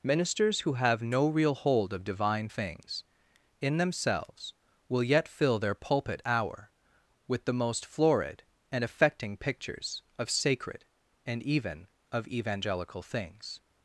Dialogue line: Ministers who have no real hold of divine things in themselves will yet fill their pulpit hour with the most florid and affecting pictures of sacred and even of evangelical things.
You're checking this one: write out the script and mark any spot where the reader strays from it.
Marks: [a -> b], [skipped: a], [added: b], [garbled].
Ministers who have no real hold of divine things in themselves will yet fill their pulpit hour with the most florid and affecting pictures of sacred and even of evangelical things.